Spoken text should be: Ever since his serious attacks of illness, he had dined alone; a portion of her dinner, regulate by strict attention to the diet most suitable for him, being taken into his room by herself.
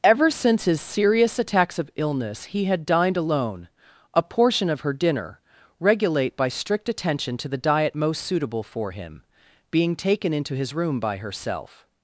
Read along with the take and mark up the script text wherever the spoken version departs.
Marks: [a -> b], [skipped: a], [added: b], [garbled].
Ever since his serious attacks of illness, he had dined alone; a portion of her dinner, regulate by strict attention to the diet most suitable for him, being taken into his room by herself.